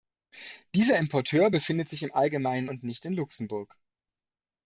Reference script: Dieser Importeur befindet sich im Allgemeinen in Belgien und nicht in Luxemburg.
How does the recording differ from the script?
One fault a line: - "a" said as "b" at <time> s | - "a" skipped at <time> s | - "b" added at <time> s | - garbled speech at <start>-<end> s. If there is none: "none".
- "in Belgien" skipped at 2.7 s